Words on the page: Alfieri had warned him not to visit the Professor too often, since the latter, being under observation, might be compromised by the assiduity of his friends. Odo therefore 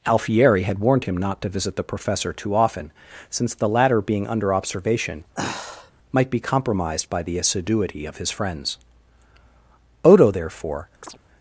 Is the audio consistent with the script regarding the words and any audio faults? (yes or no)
no